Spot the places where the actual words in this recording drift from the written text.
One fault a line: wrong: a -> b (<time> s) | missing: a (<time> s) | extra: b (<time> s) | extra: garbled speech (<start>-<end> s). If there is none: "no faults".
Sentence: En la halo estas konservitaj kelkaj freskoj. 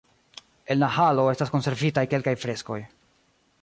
no faults